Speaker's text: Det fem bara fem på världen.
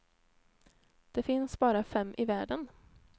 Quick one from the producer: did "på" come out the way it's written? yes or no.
no